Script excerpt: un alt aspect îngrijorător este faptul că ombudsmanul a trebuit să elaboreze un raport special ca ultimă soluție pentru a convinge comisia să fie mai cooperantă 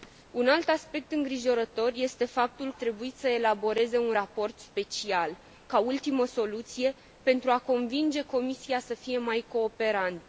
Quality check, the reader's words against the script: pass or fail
fail